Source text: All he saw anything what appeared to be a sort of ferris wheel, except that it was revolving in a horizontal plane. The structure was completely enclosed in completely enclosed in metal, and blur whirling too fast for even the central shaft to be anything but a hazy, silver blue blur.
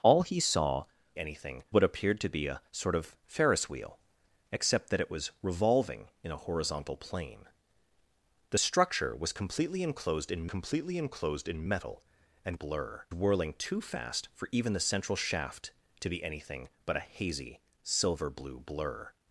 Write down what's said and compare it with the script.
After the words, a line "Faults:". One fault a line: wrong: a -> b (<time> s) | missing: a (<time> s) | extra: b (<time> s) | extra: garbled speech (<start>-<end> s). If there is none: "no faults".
All he saw anything what appeared to be a sort of ferris wheel, except that it was revolving in a horizontal plane. The structure was completely enclosed in completely enclosed in metal, and blur whirling too fast for even the central shaft to be anything but a hazy, silver blue blur.
Faults:
no faults